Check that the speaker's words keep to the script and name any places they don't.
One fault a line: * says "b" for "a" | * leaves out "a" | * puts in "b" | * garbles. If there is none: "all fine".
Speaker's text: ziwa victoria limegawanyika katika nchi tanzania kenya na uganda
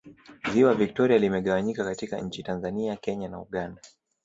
all fine